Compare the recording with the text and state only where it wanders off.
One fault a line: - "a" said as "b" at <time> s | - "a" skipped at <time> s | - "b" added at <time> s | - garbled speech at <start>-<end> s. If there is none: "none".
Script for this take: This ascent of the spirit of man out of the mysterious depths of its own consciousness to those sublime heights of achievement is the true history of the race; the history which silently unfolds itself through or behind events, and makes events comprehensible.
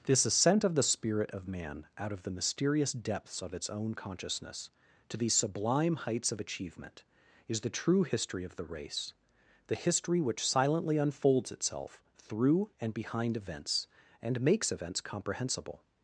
- "those" said as "these" at 5.2 s
- "or" said as "and" at 12.8 s